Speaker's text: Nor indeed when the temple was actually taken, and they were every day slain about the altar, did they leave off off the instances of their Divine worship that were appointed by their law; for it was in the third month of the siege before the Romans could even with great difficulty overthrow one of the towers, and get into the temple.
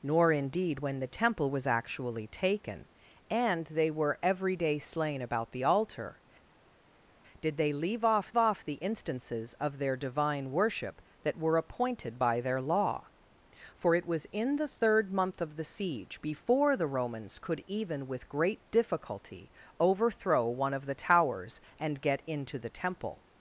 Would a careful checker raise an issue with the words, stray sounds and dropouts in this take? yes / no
no